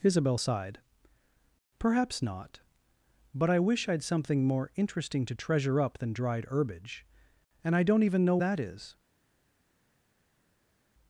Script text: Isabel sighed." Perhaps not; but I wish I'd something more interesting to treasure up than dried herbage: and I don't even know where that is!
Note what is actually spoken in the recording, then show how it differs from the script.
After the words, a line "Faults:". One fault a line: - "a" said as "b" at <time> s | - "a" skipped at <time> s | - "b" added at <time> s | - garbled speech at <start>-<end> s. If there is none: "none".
Isabel sighed." Perhaps not; but I wish I'd something more interesting to treasure up than dried herbage: and I don't even know that is!
Faults:
- "where" skipped at 8.4 s